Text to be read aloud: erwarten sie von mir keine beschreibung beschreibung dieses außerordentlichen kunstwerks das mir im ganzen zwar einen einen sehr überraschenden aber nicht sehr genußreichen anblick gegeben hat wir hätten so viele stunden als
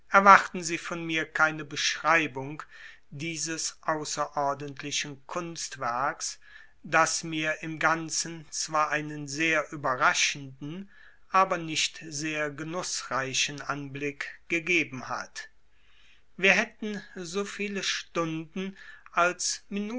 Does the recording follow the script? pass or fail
fail